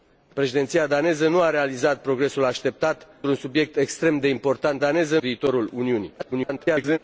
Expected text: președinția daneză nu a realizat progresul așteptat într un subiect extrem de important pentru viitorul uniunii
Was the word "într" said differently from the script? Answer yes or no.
yes